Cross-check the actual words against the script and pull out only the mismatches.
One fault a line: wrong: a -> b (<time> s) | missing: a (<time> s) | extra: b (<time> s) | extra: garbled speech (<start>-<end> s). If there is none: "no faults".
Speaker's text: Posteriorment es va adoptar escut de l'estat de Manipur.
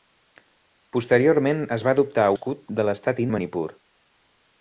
no faults